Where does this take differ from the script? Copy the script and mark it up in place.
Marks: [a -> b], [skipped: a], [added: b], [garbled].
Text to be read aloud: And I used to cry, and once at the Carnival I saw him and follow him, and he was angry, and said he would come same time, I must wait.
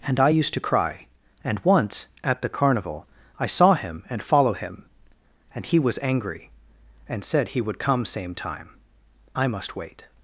And I used to cry, and once at the Carnival I saw him and follow him, and he was angry, and said he would come same time, I must wait.